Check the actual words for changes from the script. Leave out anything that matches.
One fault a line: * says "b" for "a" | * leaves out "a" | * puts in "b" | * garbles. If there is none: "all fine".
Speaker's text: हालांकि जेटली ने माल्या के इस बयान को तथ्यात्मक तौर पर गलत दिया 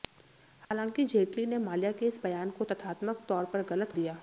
all fine